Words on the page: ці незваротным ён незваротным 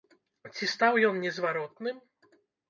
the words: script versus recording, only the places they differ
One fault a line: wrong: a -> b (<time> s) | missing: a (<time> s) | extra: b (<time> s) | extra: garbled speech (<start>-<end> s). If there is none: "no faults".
wrong: незваротным -> стаў (0.7 s)